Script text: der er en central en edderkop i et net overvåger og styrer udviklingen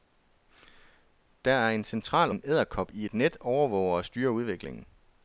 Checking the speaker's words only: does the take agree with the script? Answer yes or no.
yes